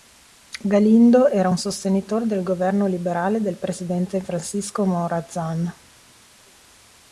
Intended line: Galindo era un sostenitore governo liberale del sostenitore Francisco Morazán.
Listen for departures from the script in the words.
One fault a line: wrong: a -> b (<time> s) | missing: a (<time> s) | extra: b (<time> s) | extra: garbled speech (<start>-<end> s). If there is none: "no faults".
extra: del (2.2 s)
wrong: sostenitore -> presidente (3.6 s)